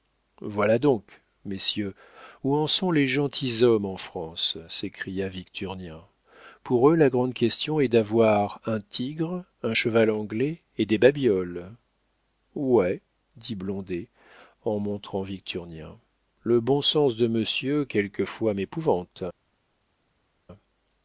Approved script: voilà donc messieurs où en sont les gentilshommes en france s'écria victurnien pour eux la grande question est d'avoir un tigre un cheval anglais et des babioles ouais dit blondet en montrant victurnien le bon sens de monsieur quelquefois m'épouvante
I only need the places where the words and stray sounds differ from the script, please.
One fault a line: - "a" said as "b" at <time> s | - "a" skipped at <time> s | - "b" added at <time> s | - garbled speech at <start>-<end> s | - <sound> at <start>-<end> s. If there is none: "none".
none